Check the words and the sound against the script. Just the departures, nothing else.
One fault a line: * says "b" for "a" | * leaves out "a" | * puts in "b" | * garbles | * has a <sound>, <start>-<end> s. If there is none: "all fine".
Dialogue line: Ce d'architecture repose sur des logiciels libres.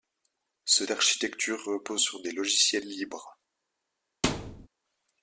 * has a thud, 4.2-4.7 s